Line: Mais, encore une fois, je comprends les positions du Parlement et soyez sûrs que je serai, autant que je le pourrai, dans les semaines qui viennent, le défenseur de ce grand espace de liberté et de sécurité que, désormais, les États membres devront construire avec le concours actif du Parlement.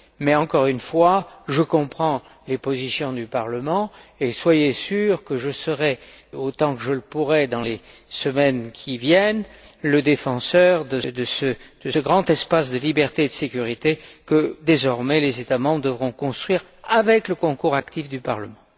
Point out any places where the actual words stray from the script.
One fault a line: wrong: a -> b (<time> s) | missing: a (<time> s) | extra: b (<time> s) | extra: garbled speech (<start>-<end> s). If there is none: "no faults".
no faults